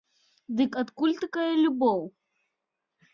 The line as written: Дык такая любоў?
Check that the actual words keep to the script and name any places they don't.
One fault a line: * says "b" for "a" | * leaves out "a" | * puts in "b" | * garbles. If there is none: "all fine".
* puts in "адкуль"